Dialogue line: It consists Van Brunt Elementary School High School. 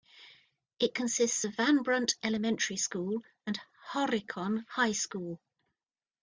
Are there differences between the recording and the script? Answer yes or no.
yes